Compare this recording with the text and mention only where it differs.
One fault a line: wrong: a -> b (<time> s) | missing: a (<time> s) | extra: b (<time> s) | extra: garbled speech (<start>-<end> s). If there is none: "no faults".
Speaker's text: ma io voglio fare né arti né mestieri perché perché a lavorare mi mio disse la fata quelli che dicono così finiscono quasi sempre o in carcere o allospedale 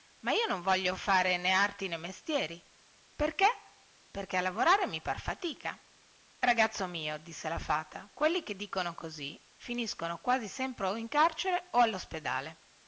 extra: non (0.5 s)
extra: par fatica ragazzo (5.0 s)